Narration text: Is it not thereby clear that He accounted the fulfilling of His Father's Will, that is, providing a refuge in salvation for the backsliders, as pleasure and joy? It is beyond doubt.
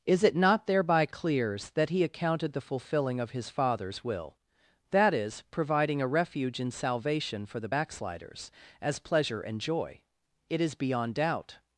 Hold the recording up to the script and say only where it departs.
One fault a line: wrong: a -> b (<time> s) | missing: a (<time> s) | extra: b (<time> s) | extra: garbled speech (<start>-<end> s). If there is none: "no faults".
wrong: clear -> clears (1.1 s)